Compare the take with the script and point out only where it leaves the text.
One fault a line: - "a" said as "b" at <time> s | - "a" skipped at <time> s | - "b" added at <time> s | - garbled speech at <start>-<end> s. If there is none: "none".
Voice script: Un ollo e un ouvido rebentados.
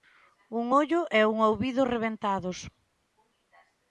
none